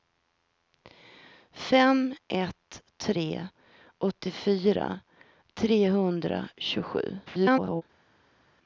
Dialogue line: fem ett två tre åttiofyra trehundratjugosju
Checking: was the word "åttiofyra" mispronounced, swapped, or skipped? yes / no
no